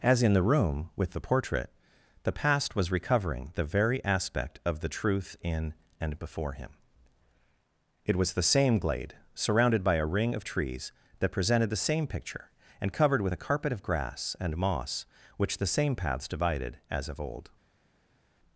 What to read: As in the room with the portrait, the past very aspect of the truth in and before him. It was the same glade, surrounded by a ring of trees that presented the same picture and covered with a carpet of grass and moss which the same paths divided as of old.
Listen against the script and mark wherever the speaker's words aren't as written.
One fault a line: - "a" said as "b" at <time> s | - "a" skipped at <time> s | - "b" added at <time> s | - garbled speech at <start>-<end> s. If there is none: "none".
- "was recovering the" added at 2.8 s